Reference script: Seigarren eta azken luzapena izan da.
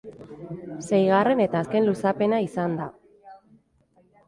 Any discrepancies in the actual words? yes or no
no